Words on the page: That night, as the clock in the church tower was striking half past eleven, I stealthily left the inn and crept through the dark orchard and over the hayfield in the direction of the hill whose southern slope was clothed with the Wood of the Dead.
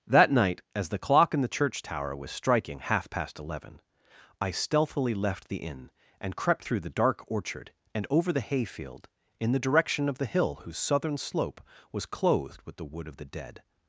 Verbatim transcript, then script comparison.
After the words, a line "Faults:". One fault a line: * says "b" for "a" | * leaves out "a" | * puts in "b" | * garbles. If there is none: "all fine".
That night, as the clock in the church tower was striking half past eleven, I stealthily left the inn and crept through the dark orchard and over the hayfield in the direction of the hill whose southern slope was clothed with the Wood of the Dead.
Faults:
all fine